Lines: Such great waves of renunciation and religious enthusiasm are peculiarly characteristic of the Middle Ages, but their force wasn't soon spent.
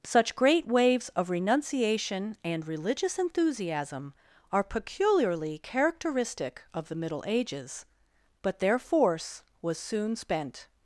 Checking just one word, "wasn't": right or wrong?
wrong